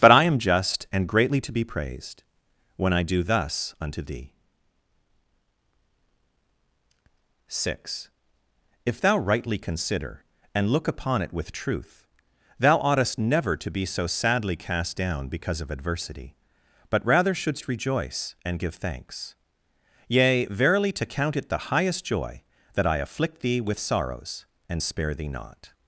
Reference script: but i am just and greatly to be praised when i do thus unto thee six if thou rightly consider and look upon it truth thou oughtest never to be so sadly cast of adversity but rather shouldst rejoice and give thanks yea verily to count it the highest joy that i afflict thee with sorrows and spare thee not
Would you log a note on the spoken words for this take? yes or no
yes